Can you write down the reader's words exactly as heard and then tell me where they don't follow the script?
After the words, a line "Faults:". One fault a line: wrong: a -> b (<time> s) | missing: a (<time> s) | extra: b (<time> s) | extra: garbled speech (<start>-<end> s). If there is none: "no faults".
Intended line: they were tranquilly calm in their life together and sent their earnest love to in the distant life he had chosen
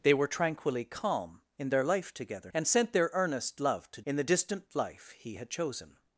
they were tranquilly calm in their life together and sent their earnest love to in the distant life he had chosen
Faults:
no faults